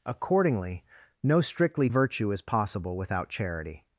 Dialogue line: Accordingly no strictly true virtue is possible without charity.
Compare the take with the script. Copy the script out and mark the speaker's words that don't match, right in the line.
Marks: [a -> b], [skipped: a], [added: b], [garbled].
Accordingly no strictly [skipped: true] virtue is possible without charity.